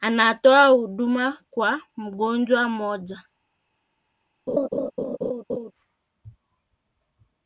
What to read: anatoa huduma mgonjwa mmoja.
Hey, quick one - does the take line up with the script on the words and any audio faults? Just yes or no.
no